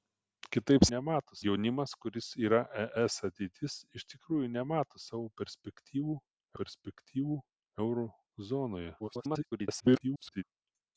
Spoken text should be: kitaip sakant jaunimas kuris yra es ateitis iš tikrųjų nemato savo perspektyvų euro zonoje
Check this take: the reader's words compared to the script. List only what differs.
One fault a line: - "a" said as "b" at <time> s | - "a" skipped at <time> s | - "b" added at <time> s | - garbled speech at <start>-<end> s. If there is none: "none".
- "sakant" said as "nemato" at 0.9 s
- "perspektyvų" added at 6.6 s
- garbled speech at 9.0-10.4 s